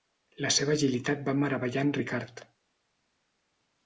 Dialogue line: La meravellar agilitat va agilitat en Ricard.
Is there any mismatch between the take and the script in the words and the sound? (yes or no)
yes